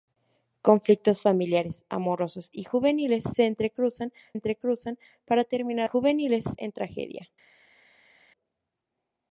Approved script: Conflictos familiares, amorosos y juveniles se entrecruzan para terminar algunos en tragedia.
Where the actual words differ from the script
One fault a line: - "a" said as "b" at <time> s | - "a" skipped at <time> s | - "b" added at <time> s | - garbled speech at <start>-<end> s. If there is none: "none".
- "entrecruzan" added at 4.3 s
- "algunos" said as "juveniles" at 5.8 s